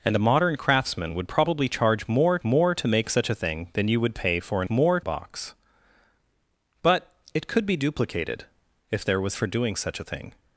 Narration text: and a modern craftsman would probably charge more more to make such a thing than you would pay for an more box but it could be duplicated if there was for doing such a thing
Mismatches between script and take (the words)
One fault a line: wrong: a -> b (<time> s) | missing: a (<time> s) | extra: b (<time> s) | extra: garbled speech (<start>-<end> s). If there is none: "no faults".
no faults